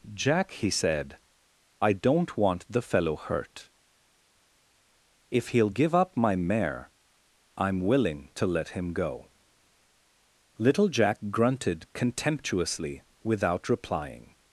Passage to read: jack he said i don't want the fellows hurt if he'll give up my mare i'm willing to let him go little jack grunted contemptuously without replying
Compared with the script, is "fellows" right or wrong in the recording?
wrong